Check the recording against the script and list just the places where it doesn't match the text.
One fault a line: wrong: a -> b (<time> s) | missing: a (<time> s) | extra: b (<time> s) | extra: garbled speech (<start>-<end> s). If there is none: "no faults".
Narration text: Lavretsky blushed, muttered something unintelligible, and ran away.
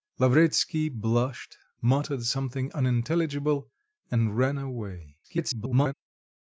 extra: garbled speech (5.2-5.9 s)